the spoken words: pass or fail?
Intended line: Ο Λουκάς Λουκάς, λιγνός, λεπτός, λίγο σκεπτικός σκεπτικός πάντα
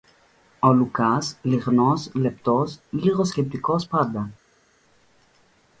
fail